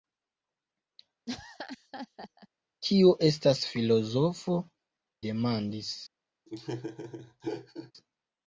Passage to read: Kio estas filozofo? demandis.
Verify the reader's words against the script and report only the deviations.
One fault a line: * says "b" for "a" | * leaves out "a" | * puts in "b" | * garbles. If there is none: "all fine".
all fine